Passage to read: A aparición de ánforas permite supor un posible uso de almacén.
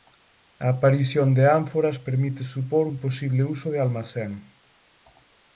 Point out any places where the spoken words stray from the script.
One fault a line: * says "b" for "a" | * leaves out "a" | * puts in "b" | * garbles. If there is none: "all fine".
all fine